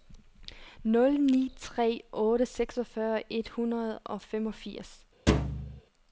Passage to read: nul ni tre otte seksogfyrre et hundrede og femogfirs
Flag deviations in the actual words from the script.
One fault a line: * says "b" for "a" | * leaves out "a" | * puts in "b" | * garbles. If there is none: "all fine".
all fine